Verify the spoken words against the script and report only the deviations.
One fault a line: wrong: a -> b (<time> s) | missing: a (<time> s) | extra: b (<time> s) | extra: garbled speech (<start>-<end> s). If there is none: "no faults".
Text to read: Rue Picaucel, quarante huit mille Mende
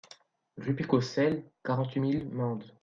no faults